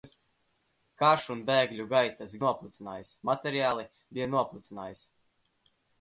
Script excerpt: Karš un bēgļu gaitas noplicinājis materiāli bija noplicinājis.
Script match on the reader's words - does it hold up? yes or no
yes